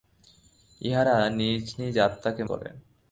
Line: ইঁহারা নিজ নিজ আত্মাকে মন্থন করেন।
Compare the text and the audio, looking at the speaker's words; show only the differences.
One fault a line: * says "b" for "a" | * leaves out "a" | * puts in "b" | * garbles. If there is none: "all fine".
* leaves out "মন্থন"